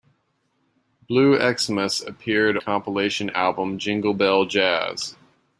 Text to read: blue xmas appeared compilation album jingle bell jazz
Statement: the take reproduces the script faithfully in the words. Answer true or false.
true